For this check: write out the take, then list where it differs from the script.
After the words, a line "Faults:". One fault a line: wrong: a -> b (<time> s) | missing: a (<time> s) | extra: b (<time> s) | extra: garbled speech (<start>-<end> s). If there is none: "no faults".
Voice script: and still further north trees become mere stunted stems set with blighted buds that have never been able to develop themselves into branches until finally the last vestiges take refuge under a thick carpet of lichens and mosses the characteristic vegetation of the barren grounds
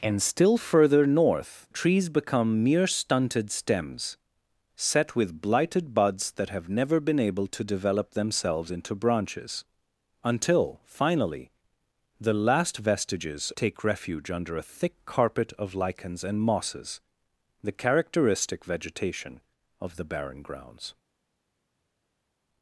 and still further north trees become mere stunted stems set with blighted buds that have never been able to develop themselves into branches until finally the last vestiges take refuge under a thick carpet of lichens and mosses the characteristic vegetation of the barren grounds
Faults:
no faults